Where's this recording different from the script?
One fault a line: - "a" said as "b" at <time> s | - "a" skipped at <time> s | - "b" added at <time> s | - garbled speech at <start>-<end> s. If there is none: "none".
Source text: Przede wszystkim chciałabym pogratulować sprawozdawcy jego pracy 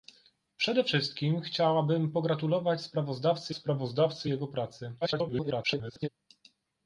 - "sprawozdawcy" added at 3.5 s
- garbled speech at 5.0-6.1 s